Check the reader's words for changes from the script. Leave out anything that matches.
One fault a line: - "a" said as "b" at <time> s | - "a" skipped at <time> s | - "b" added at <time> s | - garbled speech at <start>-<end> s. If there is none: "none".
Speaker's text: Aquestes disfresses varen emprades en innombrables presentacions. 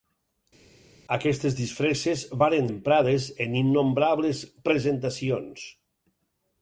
none